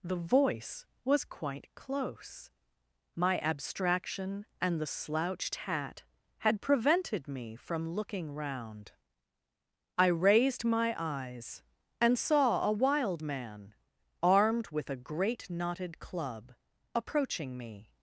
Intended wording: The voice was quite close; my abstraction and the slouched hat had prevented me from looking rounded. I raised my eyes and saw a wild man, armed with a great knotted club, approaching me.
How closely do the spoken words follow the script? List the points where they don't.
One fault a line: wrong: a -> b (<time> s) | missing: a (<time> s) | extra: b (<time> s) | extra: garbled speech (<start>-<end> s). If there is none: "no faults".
wrong: rounded -> round (8.3 s)